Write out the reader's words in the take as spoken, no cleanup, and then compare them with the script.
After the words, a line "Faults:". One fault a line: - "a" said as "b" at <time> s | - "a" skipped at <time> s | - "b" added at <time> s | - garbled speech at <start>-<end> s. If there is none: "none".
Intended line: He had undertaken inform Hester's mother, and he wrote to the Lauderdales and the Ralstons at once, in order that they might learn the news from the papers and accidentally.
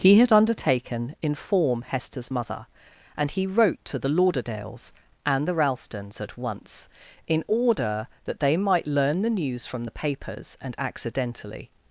He had undertaken inform Hester's mother, and he wrote to the Lauderdales and the Ralstons at once, in order that they might learn the news from the papers and accidentally.
Faults:
none